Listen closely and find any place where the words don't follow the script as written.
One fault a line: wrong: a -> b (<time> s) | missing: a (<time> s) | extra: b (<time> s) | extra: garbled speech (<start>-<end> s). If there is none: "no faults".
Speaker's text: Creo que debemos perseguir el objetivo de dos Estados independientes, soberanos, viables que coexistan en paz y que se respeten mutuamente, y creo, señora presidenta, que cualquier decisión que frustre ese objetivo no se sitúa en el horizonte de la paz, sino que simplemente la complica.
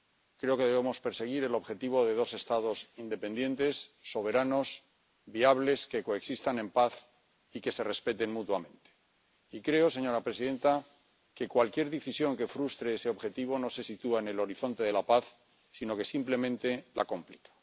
no faults